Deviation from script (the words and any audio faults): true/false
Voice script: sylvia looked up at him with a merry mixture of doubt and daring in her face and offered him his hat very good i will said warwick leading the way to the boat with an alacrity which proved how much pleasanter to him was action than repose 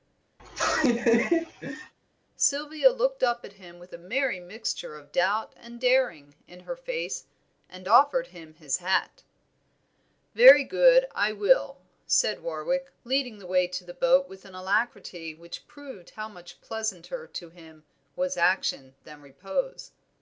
true